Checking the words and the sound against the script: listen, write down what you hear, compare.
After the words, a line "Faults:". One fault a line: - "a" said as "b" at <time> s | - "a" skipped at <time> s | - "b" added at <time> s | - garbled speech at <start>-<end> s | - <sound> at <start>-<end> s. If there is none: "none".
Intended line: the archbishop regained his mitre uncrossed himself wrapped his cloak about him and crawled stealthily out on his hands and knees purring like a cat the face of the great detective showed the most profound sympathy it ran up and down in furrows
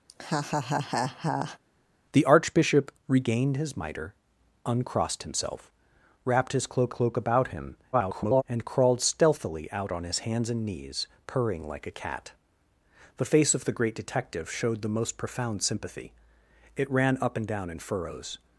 the archbishop regained his mitre uncrossed himself wrapped his cloak cloak about him [garbled] and crawled stealthily out on his hands and knees purring like a cat the face of the great detective showed the most profound sympathy it ran up and down in furrows
Faults:
- laugh at 0.1-1.6 s
- "cloak" added at 6.9 s
- garbled speech at 7.9-8.4 s